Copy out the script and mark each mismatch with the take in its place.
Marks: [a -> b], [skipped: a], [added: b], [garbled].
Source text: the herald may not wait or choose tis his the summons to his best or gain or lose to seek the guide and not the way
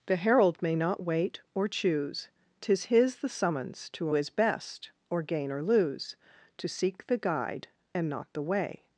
the herald may not wait or choose tis his the summons to his best or gain or lose to seek the guide and not the way